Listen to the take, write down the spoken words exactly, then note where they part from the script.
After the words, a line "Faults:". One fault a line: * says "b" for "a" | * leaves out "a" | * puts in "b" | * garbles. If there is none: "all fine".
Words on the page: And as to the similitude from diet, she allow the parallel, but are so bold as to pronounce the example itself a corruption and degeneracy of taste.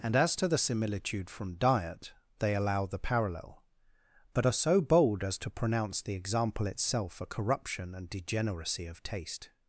And as to the similitude from diet, they allow the parallel, but are so bold as to pronounce the example itself a corruption and degeneracy of taste.
Faults:
* says "they" for "she"